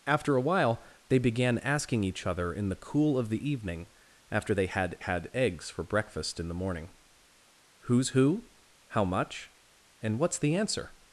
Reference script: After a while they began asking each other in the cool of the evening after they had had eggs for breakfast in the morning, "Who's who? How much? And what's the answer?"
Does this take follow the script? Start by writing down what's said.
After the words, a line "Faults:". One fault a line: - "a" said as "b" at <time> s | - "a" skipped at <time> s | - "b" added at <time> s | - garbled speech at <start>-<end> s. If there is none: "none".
After a while they began asking each other in the cool of the evening after they had had eggs for breakfast in the morning, "Who's who? How much? And what's the answer?"
Faults:
none